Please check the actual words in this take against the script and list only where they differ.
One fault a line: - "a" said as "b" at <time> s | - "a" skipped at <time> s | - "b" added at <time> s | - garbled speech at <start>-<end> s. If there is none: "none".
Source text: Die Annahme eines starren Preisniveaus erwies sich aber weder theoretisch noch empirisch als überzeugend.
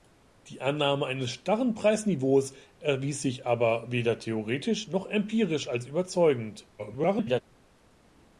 - garbled speech at 6.8-7.4 s